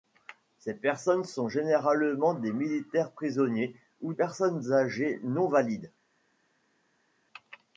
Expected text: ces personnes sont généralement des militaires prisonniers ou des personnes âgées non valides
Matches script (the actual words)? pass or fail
fail